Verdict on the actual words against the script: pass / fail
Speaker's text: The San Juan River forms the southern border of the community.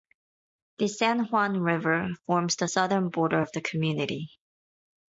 pass